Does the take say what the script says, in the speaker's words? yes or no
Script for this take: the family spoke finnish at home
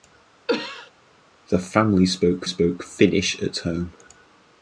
no